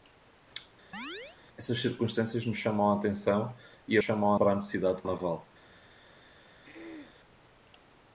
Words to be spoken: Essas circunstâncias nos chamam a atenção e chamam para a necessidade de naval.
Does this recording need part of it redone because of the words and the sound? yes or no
yes